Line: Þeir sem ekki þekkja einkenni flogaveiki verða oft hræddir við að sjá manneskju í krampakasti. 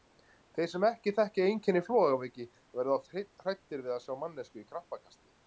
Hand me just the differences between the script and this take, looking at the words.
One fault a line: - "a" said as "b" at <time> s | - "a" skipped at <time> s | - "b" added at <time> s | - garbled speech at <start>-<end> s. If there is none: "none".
none